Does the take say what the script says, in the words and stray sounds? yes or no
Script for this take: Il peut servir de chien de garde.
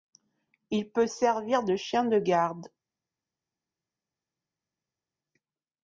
yes